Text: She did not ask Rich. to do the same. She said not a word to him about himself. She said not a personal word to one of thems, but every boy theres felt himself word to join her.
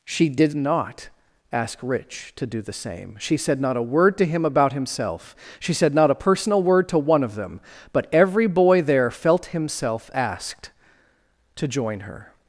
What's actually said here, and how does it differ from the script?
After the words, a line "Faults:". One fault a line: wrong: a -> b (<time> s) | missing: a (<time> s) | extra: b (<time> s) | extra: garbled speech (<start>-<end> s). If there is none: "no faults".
She did not ask Rich. to do the same. She said not a word to him about himself. She said not a personal word to one of them, but every boy there felt himself asked to join her.
Faults:
wrong: thems -> them (7.4 s)
wrong: theres -> there (8.8 s)
wrong: word -> asked (10.1 s)